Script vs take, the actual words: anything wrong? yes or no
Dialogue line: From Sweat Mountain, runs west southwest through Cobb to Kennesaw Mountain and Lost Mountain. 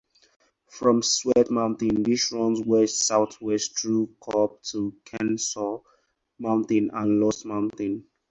yes